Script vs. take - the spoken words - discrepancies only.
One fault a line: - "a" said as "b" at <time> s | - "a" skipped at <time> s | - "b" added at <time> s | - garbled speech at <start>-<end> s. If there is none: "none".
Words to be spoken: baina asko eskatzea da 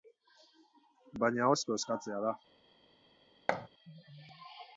none